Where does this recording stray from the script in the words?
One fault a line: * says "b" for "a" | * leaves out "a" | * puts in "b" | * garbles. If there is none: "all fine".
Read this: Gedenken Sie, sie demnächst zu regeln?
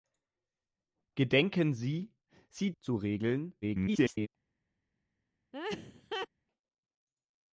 * leaves out "demnächst"
* garbles